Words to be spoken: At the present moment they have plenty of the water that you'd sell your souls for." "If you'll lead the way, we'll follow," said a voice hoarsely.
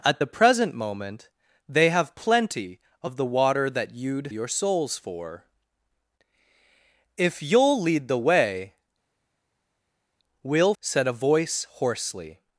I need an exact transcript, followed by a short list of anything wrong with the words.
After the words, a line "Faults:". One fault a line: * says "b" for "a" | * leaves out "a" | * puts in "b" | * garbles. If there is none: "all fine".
At the present moment they have plenty of the water that you'd your souls for." "If you'll lead the way, we'll," said a voice hoarsely.
Faults:
* leaves out "sell"
* leaves out "follow"